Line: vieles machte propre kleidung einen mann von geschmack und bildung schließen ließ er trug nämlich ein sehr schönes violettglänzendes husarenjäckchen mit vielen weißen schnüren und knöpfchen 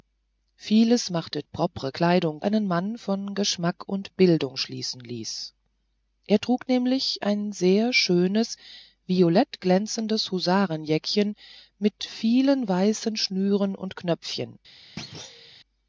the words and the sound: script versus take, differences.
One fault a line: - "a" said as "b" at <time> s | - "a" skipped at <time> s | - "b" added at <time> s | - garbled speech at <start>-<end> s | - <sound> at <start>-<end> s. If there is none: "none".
- thud at 15.0-15.5 s